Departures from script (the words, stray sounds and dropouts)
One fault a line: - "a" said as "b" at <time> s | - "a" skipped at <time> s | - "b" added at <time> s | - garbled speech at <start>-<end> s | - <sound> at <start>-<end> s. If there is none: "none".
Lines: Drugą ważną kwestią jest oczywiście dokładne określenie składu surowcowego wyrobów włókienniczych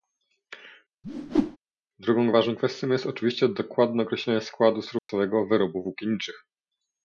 - whoosh at 1.0-1.6 s
- dropout at 5.0-5.1 s